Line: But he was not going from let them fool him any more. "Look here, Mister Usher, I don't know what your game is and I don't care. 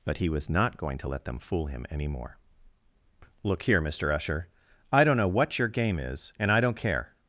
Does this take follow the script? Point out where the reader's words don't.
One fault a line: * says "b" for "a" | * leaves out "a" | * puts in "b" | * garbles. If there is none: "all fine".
* says "to" for "from"